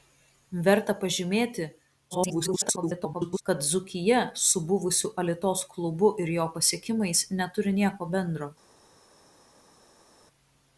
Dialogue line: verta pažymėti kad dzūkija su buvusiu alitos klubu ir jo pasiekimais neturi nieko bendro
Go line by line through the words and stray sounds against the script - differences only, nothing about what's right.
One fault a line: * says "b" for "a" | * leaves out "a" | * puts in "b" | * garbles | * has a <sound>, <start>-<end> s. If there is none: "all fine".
* garbles